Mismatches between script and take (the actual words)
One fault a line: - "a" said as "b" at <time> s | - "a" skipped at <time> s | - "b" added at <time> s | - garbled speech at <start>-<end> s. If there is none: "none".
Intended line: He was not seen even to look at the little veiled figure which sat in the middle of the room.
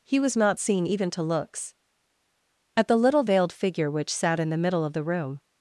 - "look" said as "looks" at 1.2 s